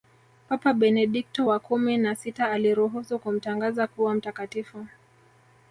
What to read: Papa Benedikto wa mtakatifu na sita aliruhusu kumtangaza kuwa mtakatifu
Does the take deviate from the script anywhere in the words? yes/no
yes